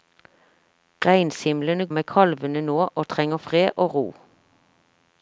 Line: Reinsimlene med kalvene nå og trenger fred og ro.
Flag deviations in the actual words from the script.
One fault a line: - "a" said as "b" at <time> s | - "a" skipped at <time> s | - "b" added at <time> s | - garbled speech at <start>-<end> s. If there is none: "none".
none